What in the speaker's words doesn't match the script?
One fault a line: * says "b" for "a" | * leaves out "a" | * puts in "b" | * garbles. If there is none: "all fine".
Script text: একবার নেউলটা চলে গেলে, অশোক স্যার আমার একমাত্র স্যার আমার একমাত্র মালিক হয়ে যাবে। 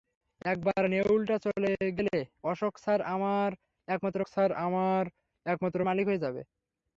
all fine